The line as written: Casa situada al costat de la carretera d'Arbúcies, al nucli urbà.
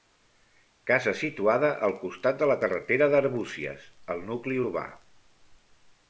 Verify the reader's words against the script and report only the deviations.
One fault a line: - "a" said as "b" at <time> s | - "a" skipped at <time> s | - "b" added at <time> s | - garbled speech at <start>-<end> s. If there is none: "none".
none